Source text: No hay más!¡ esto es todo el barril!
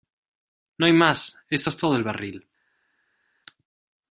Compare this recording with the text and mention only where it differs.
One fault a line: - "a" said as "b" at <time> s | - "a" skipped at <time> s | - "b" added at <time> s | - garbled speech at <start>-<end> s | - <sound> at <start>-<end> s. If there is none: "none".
none